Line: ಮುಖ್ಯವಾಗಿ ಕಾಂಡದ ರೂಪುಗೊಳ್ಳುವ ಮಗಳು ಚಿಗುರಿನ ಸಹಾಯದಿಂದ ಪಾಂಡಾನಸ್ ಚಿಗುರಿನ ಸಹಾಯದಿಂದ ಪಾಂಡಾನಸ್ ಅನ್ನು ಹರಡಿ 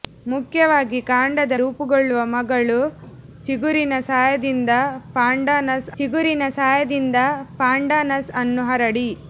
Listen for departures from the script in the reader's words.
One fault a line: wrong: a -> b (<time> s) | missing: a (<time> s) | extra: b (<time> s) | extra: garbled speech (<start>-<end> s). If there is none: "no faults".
no faults